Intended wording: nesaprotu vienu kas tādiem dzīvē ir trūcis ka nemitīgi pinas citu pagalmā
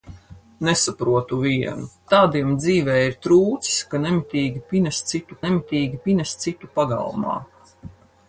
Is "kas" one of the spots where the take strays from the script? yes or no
yes